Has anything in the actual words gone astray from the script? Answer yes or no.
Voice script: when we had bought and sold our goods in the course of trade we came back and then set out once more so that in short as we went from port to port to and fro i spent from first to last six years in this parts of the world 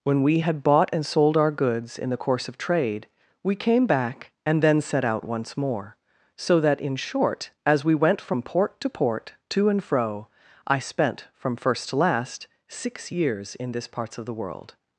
no